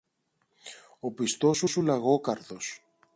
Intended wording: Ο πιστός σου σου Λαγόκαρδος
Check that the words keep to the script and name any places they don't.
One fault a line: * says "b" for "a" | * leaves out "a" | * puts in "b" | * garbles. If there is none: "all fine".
all fine